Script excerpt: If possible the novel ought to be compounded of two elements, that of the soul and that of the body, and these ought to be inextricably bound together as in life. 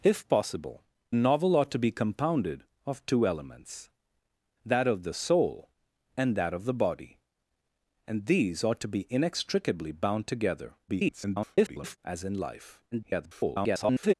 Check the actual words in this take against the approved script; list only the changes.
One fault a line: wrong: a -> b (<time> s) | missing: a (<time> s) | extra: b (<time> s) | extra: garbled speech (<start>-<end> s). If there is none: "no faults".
missing: the (0.8 s)
extra: garbled speech (10.9-12.0 s)
extra: garbled speech (12.9-14.1 s)